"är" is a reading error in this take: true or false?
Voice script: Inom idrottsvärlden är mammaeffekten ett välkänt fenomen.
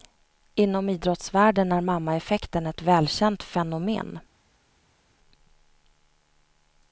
false